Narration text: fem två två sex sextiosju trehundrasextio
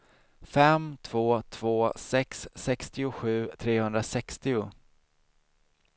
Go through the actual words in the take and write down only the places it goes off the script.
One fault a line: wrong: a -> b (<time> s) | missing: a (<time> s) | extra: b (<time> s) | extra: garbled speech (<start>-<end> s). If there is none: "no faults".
no faults